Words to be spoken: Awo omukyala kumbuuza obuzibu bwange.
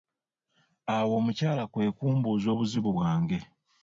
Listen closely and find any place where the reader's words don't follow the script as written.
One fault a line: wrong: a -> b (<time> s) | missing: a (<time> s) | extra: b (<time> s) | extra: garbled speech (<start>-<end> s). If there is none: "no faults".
extra: kwe (1.7 s)